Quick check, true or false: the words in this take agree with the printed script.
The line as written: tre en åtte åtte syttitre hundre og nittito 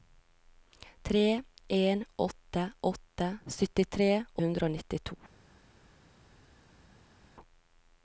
true